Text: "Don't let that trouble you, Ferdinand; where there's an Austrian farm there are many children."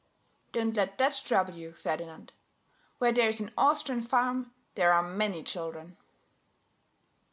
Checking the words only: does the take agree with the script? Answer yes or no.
yes